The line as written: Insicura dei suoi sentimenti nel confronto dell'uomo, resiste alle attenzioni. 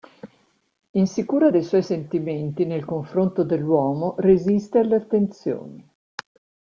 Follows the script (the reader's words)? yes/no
yes